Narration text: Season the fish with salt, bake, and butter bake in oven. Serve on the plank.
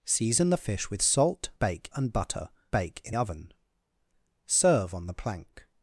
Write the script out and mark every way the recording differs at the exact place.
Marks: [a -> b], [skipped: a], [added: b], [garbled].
Season the fish with salt, bake, and butter bake in oven. Serve on the plank.